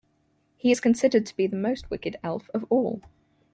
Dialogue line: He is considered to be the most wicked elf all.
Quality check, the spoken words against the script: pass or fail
fail